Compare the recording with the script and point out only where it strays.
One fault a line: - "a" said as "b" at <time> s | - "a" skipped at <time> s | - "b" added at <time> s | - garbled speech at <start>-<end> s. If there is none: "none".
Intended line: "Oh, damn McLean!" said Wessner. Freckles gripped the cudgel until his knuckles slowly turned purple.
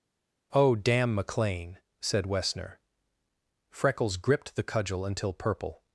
- "his knuckles slowly turned" skipped at 5.3 s